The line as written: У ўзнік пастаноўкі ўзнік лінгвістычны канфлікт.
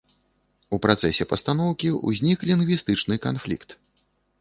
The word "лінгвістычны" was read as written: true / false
true